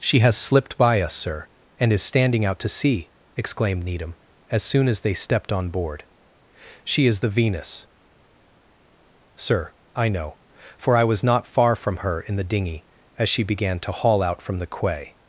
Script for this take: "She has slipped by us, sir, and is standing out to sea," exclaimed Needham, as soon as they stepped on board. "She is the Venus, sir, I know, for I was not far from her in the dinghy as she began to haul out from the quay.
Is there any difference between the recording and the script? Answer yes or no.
no